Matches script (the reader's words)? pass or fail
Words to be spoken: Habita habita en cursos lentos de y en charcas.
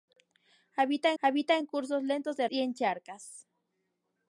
pass